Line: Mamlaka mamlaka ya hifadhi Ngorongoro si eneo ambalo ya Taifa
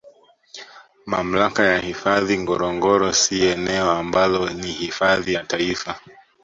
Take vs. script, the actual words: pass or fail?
fail